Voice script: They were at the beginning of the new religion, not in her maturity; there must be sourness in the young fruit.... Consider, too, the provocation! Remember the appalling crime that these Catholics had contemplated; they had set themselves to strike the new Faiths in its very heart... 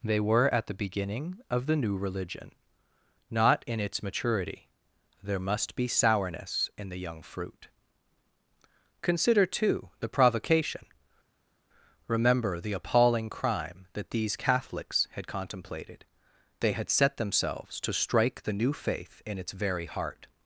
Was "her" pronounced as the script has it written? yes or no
no